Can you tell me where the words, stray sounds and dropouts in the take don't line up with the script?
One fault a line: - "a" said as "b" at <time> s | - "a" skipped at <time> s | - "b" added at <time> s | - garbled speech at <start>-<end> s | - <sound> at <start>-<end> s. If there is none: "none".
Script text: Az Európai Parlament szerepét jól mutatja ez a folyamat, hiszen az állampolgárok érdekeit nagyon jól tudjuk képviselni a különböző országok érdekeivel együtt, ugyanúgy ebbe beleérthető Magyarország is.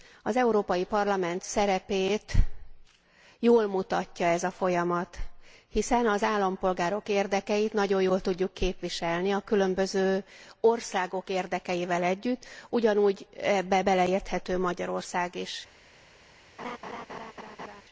- laugh at 16.6-17.8 s